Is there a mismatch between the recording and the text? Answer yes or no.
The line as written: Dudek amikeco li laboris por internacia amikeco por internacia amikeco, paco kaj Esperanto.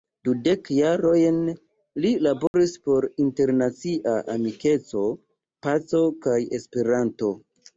yes